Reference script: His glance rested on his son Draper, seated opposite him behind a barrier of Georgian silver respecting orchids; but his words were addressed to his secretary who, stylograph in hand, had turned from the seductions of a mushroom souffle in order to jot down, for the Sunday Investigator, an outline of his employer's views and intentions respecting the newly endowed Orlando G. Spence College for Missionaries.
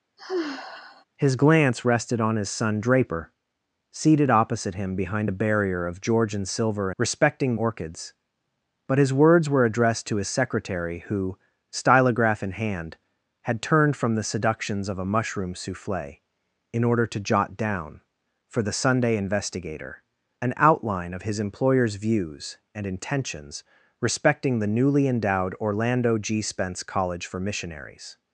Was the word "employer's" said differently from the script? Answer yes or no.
no